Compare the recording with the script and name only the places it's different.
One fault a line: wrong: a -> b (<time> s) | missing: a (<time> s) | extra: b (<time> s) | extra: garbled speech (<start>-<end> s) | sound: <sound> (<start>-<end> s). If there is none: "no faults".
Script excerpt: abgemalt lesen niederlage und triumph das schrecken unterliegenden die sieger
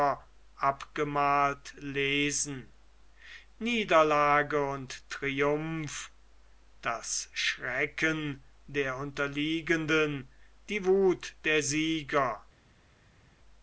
extra: der (8.7 s)
extra: wuth der (10.8 s)